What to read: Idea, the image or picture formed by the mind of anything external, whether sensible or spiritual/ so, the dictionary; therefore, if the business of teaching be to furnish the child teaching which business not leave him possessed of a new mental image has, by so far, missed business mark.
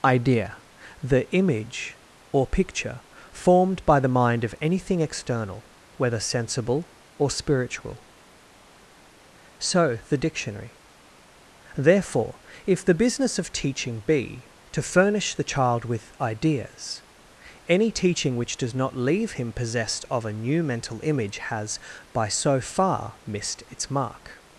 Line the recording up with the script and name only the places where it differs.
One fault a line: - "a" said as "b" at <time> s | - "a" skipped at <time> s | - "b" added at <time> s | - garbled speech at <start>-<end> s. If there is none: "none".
- "with ideas any" added at 15.8 s
- "business" said as "does" at 18.6 s
- "business" said as "its" at 23.7 s